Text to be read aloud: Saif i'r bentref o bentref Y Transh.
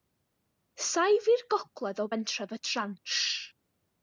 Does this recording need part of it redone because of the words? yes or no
yes